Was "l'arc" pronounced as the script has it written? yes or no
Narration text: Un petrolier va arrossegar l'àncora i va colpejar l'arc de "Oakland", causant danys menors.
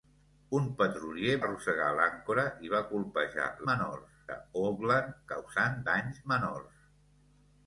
no